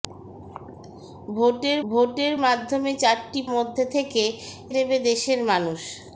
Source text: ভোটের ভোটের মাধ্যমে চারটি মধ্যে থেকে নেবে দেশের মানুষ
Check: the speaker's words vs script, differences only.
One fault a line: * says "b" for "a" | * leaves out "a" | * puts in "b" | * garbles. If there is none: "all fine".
all fine